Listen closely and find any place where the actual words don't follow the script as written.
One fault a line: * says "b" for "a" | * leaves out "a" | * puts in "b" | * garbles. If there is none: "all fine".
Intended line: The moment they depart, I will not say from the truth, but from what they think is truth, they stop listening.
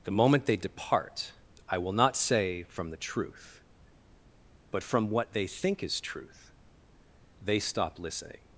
all fine